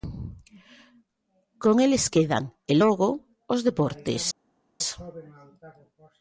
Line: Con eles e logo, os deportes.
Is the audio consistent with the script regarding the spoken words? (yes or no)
no